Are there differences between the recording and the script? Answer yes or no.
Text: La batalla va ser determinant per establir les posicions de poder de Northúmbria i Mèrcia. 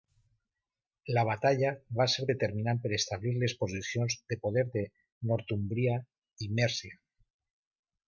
no